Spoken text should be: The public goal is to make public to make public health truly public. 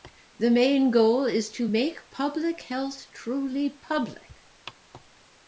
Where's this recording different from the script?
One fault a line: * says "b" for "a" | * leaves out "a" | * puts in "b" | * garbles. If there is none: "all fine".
* says "main" for "public"
* leaves out "to make public"